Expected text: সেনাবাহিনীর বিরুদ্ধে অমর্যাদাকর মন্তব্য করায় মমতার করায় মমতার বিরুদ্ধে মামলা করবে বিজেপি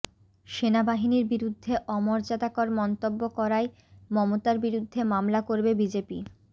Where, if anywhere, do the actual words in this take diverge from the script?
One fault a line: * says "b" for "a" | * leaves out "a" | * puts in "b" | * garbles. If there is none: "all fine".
* leaves out "করায় মমতার"